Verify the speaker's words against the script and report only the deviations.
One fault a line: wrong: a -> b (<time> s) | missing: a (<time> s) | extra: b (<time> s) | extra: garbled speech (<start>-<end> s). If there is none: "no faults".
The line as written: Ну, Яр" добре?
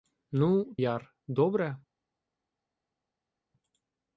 no faults